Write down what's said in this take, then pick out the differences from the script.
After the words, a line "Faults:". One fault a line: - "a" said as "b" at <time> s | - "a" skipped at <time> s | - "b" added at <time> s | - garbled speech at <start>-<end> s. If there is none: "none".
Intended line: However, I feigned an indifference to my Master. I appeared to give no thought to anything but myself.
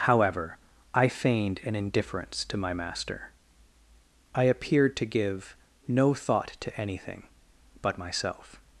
However, I feigned an indifference to my Master. I appeared to give no thought to anything but myself.
Faults:
none